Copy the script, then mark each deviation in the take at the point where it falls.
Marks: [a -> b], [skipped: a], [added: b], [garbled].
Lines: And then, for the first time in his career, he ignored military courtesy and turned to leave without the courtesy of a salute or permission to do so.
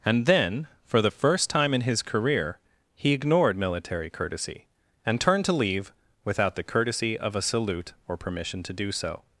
And then, for the first time in his career, he ignored military courtesy and turned to leave without the courtesy of a salute or permission to do so.